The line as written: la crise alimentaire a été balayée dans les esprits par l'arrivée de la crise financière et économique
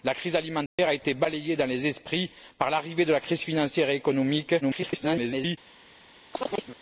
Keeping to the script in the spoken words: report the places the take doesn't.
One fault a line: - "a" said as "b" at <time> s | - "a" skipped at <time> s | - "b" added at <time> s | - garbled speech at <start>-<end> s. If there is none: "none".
- garbled speech at 4.6-5.6 s